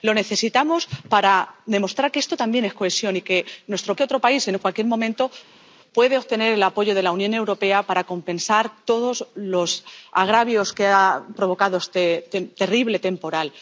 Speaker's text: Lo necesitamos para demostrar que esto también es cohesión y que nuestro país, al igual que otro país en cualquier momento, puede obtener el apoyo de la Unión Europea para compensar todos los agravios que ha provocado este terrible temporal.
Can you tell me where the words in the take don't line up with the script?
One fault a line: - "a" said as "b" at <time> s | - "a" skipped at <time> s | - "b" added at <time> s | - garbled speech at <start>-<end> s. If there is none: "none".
- "país al igual" skipped at 4.0 s